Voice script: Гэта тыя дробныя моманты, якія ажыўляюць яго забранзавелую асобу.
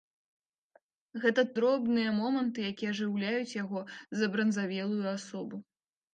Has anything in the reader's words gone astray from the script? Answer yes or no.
yes